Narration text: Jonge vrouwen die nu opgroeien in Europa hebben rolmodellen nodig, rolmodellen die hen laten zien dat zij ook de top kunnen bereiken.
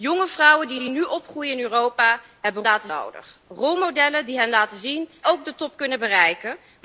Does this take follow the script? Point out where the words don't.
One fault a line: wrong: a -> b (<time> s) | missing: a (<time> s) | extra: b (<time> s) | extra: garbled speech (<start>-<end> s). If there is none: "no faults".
extra: die (0.8 s)
wrong: rolmodellen -> laten (2.6 s)
missing: dat zij (5.1 s)